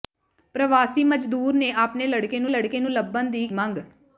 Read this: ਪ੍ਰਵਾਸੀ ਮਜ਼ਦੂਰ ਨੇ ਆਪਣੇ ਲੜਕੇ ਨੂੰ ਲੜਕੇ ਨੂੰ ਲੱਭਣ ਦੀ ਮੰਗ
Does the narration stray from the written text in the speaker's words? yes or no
no